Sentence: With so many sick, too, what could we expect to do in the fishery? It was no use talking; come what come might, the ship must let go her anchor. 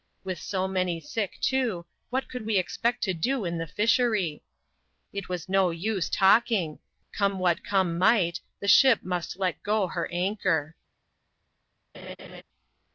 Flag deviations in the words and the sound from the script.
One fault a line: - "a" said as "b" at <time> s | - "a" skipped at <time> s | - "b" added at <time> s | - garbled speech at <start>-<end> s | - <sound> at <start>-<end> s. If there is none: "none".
- laugh at 11.9-12.4 s